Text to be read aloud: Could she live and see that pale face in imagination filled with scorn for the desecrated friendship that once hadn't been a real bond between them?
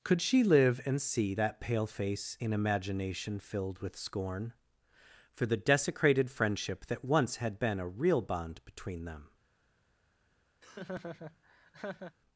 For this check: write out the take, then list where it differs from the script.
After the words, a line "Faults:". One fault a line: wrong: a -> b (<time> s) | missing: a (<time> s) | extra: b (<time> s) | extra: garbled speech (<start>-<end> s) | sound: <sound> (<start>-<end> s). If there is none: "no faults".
Could she live and see that pale face in imagination filled with scorn for the desecrated friendship that once had been a real bond between them?
Faults:
wrong: hadn't -> had (7.4 s)
sound: laugh (10.6-12.2 s)